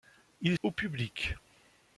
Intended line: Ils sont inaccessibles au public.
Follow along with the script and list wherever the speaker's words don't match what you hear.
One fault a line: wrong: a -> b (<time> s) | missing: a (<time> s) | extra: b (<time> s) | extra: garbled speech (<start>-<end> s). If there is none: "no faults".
missing: sont inaccessibles (0.6 s)